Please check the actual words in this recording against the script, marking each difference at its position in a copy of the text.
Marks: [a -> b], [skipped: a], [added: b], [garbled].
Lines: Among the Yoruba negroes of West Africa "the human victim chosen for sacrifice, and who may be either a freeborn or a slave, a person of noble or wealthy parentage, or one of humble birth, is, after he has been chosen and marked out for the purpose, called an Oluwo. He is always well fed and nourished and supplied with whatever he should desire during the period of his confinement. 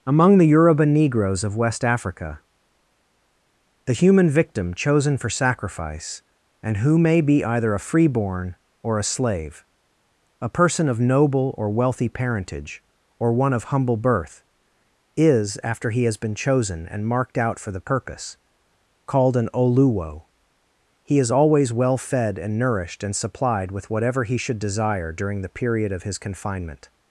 Among the Yoruba negroes of West Africa "the human victim chosen for sacrifice, and who may be either a freeborn or a slave, a person of noble or wealthy parentage, or one of humble birth, is, after he has been chosen and marked out for the purpose, called an Oluwo. He is always well fed and nourished and supplied with whatever he should desire during the period of his confinement.